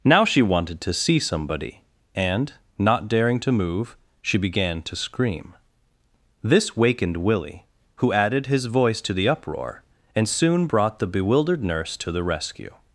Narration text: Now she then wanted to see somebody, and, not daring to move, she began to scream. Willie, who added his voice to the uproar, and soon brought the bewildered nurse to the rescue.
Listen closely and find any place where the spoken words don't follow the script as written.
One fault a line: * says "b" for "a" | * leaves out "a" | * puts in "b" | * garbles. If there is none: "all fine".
* leaves out "then"
* puts in "This wakened"